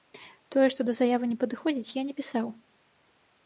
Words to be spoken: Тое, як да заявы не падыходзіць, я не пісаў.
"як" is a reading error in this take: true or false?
true